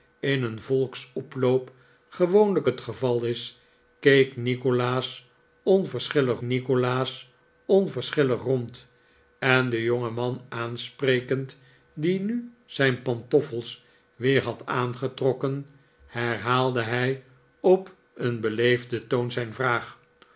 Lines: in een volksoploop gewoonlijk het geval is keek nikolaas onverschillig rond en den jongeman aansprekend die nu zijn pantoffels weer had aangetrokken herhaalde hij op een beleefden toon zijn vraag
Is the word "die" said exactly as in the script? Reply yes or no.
yes